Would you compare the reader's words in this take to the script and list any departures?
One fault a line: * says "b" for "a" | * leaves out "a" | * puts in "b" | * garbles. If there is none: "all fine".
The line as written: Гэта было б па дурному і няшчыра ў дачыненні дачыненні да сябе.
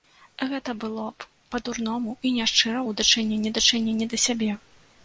all fine